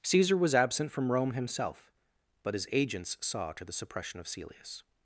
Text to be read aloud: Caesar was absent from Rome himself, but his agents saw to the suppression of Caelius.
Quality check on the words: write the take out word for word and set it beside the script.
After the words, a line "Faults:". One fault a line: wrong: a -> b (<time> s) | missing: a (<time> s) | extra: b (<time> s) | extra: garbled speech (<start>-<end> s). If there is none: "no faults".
Caesar was absent from Rome himself, but his agents saw to the suppression of Caelius.
Faults:
no faults